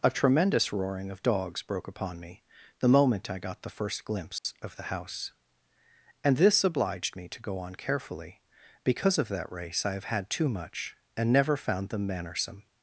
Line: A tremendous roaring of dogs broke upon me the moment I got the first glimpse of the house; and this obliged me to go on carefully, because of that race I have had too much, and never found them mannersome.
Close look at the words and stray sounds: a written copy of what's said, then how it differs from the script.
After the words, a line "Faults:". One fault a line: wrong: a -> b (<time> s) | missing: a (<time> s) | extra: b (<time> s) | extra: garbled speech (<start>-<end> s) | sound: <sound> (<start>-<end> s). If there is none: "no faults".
A tremendous roaring of dogs broke upon me the moment I got the first glimpse of the house; and this obliged me to go on carefully, because of that race I have had too much, and never found them mannersome.
Faults:
sound: dropout (4.4-4.4 s)